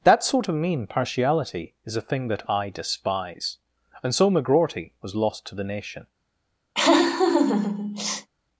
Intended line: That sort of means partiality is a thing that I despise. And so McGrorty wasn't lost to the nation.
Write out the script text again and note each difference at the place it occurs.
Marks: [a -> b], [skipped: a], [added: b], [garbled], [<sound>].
That sort of [means -> mean] partiality is a thing that I despise. And so McGrorty [wasn't -> was] lost to the nation. [laugh]